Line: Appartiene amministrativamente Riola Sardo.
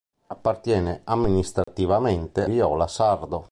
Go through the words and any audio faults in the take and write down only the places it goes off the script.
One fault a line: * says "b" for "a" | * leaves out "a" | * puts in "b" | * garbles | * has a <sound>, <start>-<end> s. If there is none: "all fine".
* has a dropout, 1.6-1.7 s